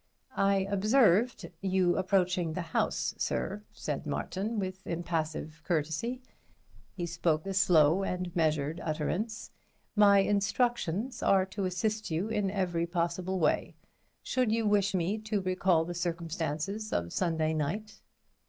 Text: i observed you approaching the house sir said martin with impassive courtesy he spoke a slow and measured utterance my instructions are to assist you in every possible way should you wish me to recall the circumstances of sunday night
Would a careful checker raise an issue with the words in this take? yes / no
no